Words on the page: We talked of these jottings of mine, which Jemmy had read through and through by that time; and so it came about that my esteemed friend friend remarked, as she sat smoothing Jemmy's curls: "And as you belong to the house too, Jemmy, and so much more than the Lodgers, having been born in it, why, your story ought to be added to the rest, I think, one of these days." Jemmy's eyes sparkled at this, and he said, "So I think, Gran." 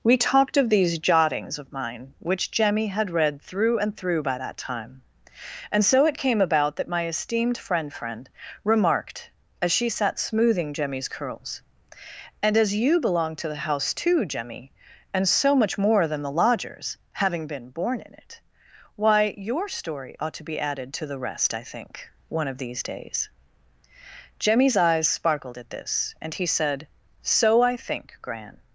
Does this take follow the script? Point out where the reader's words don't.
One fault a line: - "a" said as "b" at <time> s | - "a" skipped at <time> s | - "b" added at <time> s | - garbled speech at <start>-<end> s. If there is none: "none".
none